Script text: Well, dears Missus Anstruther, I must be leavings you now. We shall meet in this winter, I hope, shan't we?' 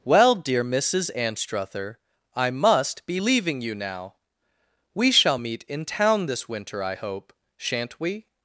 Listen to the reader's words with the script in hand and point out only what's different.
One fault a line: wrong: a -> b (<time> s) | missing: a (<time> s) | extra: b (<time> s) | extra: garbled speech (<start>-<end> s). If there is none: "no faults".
wrong: dears -> dear (0.3 s)
wrong: leavings -> leaving (3.2 s)
extra: town (5.8 s)